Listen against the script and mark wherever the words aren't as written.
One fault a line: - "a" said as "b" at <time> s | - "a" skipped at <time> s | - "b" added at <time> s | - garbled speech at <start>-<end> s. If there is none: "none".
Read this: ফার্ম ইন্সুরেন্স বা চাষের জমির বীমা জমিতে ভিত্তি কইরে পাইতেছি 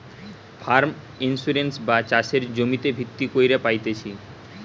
- "জমির বীমা" skipped at 2.4 s